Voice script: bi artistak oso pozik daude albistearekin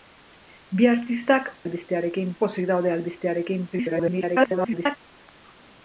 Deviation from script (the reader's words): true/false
true